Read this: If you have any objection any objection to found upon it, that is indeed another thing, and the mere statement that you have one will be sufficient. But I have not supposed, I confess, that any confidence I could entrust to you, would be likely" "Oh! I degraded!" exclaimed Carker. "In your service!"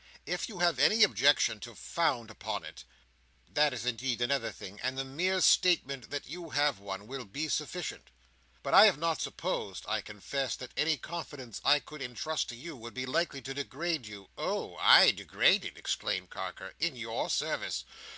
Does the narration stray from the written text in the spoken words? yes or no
yes